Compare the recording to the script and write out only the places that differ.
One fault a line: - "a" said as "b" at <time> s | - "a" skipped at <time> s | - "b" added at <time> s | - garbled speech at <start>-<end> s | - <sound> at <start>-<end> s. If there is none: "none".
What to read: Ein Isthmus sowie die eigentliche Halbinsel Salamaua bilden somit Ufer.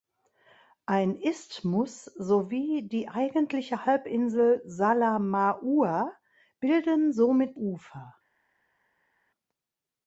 none